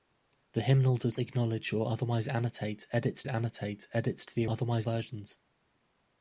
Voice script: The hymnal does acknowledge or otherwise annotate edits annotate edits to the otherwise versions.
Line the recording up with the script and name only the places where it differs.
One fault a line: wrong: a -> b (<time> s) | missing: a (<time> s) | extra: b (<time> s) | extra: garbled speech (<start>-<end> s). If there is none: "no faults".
no faults